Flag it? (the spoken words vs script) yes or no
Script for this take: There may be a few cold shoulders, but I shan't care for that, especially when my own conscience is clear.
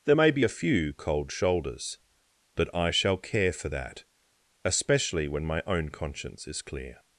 yes